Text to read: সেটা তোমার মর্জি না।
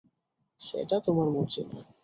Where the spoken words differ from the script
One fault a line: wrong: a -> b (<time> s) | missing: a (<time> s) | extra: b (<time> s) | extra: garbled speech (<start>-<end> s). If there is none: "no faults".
no faults